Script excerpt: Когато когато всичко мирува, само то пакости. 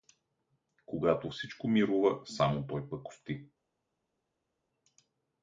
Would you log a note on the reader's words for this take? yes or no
yes